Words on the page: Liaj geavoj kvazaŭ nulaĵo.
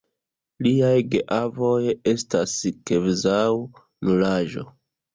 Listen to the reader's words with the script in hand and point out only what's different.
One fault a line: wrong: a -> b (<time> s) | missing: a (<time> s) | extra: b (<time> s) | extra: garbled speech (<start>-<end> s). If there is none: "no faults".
extra: estas (2.1 s)